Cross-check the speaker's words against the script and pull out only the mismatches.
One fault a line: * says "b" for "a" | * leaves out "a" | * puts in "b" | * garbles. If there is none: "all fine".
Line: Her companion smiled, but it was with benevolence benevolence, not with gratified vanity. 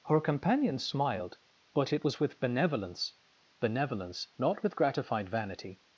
all fine